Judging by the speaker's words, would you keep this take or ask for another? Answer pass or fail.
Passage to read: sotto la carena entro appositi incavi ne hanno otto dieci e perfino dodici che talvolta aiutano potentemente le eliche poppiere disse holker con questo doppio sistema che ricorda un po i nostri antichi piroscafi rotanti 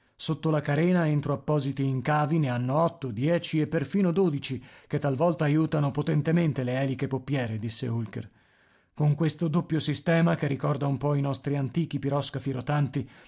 pass